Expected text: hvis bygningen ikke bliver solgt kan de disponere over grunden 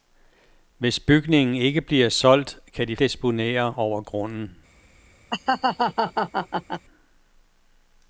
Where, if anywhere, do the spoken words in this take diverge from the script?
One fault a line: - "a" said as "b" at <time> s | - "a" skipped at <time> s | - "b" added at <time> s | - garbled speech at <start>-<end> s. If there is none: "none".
none